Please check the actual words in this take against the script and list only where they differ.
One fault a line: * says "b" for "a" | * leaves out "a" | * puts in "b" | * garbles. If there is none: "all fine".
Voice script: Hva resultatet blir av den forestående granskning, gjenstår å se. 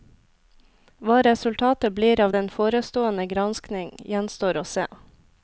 all fine